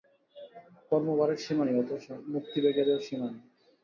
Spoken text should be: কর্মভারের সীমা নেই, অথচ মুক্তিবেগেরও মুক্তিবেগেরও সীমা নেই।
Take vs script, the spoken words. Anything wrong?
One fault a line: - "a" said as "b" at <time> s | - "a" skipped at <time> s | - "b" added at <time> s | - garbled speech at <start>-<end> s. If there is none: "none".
- "মুক্তিবেগেরও" skipped at 3.0 s